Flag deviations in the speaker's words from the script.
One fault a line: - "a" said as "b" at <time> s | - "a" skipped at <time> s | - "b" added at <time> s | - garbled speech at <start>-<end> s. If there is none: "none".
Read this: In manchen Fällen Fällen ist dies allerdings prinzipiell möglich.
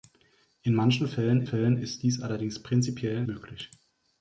none